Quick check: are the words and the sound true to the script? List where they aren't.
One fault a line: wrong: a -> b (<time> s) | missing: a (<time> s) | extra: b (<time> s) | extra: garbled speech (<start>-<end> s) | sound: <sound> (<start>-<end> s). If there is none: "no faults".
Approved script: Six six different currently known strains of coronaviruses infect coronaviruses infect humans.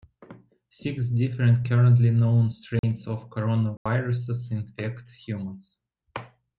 missing: six (1.1 s)
sound: dropout (2.8-2.8 s)
sound: dropout (3.8-3.9 s)
missing: coronaviruses infect (5.1 s)